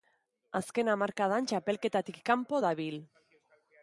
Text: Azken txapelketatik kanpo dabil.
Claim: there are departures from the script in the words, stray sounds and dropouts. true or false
true